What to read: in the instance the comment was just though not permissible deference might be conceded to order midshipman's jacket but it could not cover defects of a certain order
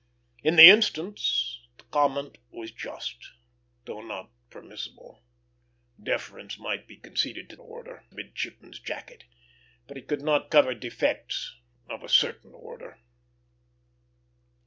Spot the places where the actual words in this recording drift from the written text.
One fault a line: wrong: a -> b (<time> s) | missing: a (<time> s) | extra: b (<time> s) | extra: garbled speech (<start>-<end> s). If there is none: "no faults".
no faults